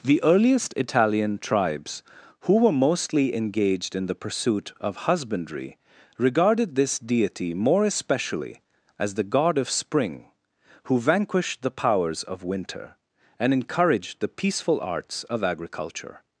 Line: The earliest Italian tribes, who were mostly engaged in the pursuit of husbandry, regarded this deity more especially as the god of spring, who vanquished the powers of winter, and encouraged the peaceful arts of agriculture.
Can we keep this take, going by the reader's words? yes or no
yes